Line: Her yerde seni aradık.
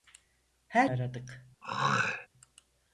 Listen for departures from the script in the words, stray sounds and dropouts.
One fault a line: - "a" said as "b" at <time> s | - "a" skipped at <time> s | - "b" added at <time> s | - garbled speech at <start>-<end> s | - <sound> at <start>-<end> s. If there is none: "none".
- "yerde seni" skipped at 0.9 s
- throat clearing at 1.6-2.3 s